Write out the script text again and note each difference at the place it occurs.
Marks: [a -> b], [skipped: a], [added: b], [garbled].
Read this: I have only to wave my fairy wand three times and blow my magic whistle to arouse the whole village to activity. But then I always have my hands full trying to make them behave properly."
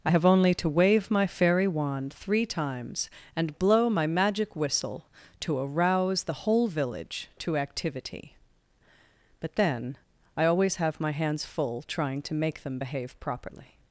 I have only to wave my fairy wand three times and blow my magic whistle to arouse the whole village to activity. But then I always have my hands full trying to make them behave properly."